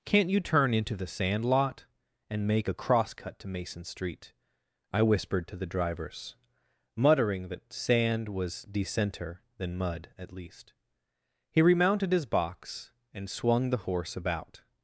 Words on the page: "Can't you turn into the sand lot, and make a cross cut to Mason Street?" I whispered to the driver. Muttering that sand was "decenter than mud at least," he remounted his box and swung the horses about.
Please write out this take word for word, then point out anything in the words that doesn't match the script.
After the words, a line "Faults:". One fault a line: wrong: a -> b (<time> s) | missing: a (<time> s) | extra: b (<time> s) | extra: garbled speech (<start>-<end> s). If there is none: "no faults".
"Can't you turn into the sand lot, and make a cross cut to Mason Street?" I whispered to the drivers. Muttering that sand was "decenter than mud at least," he remounted his box and swung the horse about.
Faults:
wrong: driver -> drivers (5.7 s)
wrong: horses -> horse (13.8 s)